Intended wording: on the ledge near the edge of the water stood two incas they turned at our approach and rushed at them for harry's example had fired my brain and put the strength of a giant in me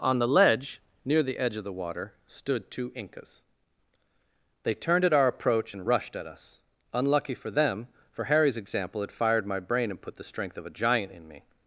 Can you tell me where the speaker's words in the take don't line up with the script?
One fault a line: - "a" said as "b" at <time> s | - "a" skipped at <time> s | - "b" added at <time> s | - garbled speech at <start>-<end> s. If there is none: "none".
- "us unlucky for" added at 6.3 s